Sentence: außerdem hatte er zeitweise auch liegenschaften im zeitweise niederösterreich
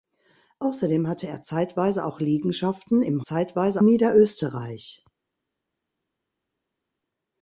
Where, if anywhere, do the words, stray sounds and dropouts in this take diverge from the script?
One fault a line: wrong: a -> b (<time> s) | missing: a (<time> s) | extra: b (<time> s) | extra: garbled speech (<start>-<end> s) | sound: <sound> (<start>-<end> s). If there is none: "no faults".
no faults